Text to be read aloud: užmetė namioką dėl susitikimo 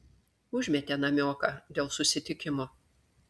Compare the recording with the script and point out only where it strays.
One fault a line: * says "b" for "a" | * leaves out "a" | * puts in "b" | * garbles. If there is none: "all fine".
all fine